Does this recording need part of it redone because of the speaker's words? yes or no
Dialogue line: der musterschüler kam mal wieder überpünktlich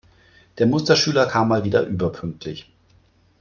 no